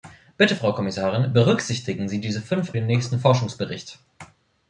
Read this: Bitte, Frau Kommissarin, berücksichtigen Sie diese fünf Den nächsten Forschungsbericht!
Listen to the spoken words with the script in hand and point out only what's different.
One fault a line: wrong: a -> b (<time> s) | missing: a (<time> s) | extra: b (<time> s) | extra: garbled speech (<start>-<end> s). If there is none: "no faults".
no faults